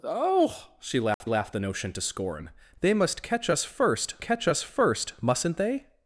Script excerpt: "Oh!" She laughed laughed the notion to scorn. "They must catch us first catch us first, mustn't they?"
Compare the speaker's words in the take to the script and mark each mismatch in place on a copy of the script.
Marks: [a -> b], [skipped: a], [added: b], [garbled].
"Oh!" She laughed laughed the notion to scorn. "They must catch us first catch us first, mustn't they?"